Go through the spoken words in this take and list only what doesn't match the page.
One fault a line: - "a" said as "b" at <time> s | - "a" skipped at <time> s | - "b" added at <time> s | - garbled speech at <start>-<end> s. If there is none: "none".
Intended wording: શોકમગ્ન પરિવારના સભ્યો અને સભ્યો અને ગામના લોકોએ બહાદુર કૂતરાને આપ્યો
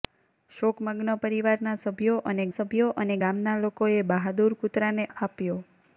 none